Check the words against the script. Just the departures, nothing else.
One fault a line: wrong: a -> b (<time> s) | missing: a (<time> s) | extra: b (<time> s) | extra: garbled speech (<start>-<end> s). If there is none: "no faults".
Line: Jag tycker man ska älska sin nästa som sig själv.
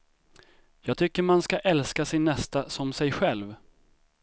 no faults